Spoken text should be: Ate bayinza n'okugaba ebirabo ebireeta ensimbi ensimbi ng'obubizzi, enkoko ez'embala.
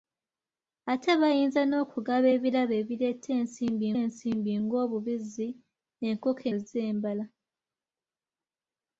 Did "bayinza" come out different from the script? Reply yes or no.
no